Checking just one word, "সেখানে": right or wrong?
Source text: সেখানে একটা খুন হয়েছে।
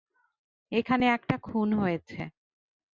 wrong